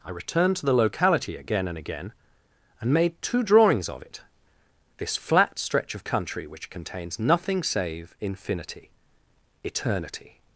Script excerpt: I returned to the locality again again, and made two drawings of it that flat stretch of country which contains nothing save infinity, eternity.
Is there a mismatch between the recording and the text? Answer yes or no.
yes